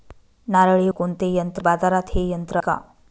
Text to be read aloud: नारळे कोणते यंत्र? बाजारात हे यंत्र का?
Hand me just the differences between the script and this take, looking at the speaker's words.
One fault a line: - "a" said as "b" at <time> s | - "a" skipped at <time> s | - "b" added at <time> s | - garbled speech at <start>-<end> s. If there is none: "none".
none